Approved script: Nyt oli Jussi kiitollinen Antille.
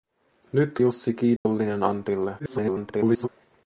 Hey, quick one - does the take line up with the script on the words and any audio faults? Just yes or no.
no